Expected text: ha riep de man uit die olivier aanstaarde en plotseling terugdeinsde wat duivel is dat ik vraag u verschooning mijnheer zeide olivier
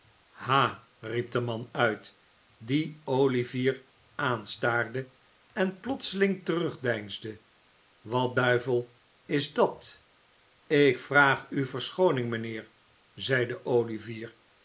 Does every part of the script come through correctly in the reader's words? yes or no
yes